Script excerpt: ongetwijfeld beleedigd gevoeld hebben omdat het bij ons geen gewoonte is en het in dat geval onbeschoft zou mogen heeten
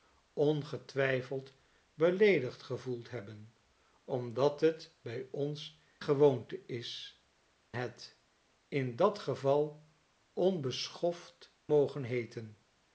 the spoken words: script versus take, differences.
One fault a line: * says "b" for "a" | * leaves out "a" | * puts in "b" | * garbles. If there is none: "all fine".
* leaves out "geen"
* leaves out "en"
* leaves out "zou"